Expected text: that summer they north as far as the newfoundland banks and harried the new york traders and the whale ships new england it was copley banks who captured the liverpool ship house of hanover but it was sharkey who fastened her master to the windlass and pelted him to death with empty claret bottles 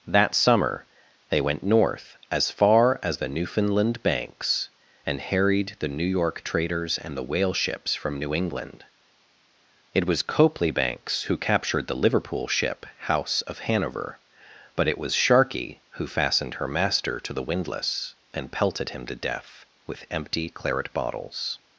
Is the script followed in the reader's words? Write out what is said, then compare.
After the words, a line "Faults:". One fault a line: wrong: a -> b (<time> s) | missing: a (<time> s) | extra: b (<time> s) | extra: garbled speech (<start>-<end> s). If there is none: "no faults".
that summer they went north as far as the newfoundland banks and harried the new york traders and the whale ships from new england it was copley banks who captured the liverpool ship house of hanover but it was sharkey who fastened her master to the windlass and pelted him to death with empty claret bottles
Faults:
extra: went (1.4 s)
extra: from (8.0 s)